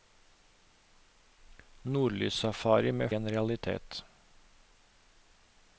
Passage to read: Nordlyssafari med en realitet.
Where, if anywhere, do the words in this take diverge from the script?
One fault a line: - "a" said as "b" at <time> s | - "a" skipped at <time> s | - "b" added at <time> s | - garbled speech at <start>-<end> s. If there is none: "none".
none